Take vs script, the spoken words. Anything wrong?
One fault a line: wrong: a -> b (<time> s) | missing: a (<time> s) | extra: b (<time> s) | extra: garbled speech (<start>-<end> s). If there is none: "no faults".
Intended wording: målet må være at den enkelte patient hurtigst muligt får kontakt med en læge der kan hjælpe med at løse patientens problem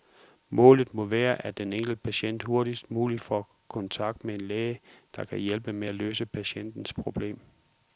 no faults